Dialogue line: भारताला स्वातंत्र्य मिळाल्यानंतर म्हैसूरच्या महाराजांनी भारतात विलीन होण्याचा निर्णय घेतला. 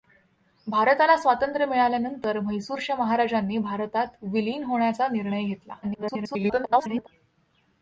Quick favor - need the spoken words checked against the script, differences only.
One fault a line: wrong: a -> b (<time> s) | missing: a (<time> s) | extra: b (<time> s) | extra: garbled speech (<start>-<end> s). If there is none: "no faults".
extra: garbled speech (5.8-7.1 s)